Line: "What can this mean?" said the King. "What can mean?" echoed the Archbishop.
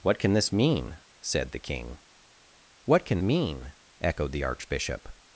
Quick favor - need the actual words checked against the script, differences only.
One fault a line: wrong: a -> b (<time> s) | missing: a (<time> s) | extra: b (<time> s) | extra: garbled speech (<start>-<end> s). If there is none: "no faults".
no faults